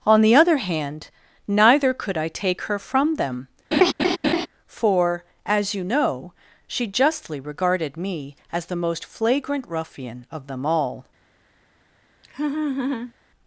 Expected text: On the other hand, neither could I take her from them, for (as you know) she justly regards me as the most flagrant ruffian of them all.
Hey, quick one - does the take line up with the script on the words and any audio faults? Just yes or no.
no